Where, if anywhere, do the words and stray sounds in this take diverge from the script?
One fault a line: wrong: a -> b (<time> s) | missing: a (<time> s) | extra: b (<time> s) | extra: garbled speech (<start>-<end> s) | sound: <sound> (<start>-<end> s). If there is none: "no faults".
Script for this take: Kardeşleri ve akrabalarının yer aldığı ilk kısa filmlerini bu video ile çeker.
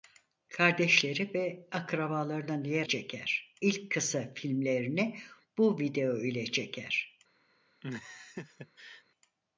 wrong: aldığı -> çeker (2.8 s)
sound: laugh (7.8-9.0 s)